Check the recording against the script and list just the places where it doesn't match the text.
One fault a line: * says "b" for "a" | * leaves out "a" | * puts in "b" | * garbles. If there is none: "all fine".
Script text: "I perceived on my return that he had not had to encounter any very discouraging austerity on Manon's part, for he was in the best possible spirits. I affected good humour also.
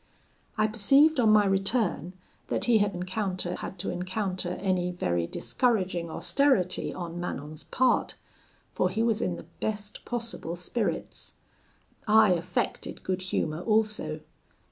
* says "encounter" for "not"